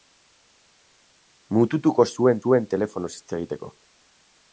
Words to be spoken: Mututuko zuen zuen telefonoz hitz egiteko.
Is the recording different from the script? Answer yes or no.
no